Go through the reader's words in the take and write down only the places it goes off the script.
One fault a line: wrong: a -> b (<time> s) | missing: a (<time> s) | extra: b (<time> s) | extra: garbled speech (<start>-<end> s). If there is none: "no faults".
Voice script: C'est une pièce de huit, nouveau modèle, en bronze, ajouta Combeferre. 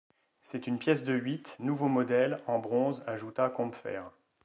no faults